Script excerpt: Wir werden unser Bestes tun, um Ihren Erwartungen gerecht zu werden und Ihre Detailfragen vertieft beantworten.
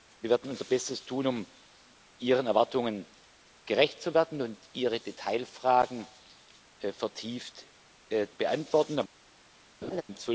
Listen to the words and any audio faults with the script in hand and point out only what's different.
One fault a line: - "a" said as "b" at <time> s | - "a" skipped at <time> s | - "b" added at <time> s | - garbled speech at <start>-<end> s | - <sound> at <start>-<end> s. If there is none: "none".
- laugh at 9.8-10.0 s